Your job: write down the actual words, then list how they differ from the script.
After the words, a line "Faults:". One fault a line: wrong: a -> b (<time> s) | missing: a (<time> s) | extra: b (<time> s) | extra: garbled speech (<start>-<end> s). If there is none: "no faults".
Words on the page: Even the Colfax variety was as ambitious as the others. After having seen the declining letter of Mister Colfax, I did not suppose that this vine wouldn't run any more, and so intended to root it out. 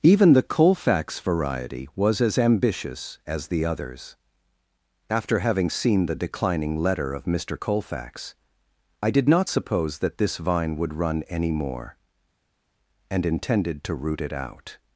Even the Colfax variety was as ambitious as the others. After having seen the declining letter of Mister Colfax, I did not suppose that this vine would run any more, and intended to root it out.
Faults:
wrong: wouldn't -> would (10.8 s)
missing: so (13.2 s)